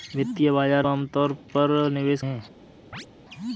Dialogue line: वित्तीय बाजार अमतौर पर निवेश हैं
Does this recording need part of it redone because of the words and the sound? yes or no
yes